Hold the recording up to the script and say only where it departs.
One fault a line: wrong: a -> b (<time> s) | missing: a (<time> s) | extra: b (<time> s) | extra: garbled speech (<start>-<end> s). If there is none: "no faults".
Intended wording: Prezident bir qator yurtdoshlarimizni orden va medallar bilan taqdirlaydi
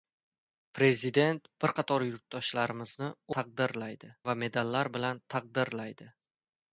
wrong: orden -> taqdirlaydi (3.4 s)